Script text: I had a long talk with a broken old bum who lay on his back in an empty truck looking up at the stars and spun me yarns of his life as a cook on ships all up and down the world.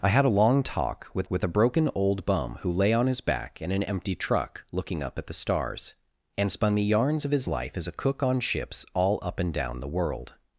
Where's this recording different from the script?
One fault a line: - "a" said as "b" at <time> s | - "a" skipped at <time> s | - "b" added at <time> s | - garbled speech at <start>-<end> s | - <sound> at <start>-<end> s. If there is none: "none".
- "with" added at 1.3 s